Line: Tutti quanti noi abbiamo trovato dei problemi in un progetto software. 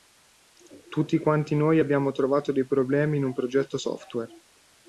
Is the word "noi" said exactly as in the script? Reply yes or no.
yes